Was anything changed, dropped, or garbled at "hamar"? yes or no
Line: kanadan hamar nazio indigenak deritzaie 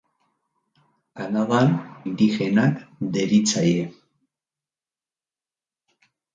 yes